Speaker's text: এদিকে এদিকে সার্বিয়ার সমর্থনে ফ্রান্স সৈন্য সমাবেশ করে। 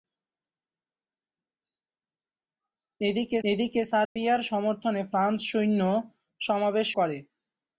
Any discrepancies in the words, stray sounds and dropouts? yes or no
yes